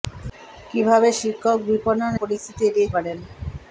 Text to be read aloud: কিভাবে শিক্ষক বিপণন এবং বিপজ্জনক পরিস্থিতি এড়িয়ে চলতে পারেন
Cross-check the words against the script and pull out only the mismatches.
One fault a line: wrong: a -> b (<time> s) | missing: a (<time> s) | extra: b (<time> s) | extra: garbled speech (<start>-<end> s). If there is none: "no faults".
missing: এবং বিপজ্জনক (2.1 s)
missing: চলতে (2.9 s)